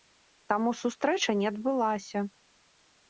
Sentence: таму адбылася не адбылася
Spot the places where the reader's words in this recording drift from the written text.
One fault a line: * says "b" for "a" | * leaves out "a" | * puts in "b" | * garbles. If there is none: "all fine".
* says "сустрэча" for "адбылася"